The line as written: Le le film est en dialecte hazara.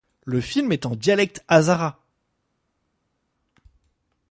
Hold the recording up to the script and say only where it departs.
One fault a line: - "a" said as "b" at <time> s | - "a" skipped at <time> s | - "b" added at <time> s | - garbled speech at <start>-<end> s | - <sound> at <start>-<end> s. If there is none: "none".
- "le" skipped at 0.4 s